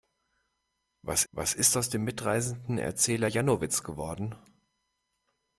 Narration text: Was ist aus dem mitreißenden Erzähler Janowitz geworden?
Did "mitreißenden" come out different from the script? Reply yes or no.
no